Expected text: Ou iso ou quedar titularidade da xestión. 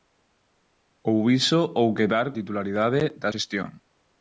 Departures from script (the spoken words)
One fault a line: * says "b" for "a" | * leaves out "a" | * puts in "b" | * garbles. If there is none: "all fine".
all fine